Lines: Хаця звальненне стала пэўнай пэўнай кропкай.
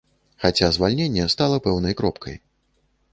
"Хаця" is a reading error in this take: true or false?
false